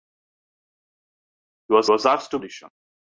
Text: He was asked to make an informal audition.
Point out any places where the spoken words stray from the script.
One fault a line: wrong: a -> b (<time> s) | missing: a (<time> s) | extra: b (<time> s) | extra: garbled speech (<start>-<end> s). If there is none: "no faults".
extra: was (1.9 s)
missing: make an informal (2.4 s)